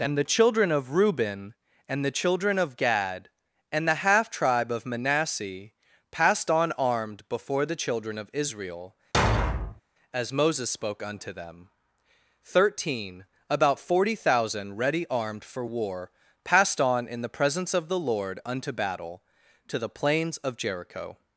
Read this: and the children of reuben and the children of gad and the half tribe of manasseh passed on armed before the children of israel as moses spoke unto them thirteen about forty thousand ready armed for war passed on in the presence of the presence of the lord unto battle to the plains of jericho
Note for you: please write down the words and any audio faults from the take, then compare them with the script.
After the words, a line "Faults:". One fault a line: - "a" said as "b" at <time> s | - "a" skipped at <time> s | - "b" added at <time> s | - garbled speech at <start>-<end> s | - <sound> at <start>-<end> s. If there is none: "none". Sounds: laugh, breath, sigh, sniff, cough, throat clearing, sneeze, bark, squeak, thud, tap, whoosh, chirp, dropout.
and the children of reuben and the children of gad and the half tribe of manasseh passed on armed before the children of israel as moses spoke unto them thirteen about forty thousand ready armed for war passed on in the presence of the lord unto battle to the plains of jericho
Faults:
- thud at 9.1-9.8 s
- "presence of the" skipped at 18.0 s